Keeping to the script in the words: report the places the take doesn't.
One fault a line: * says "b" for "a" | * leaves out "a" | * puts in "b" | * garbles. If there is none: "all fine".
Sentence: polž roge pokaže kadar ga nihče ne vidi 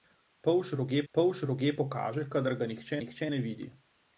* puts in "polž roge"
* puts in "nihče"